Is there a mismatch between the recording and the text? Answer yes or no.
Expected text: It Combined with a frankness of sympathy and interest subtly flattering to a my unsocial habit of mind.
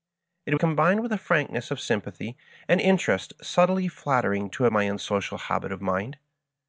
no